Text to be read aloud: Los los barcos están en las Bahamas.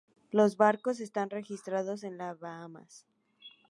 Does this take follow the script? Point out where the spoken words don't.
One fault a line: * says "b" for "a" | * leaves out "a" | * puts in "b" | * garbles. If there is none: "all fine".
* leaves out "los"
* puts in "registrados"